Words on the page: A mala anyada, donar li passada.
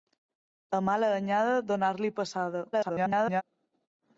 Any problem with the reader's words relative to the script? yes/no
yes